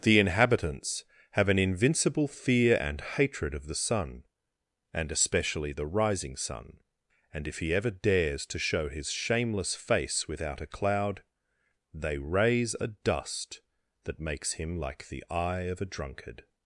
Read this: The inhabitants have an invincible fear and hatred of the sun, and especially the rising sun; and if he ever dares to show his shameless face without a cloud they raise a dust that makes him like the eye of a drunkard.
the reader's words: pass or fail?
pass